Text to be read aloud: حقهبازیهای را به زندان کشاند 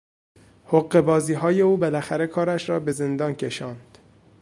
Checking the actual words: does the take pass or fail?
fail